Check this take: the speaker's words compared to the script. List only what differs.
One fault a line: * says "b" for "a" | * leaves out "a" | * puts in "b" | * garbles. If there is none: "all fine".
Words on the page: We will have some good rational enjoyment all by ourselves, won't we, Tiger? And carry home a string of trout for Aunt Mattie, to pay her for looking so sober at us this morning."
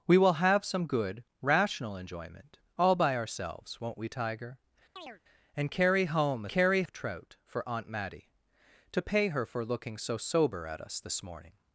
* says "carry" for "string"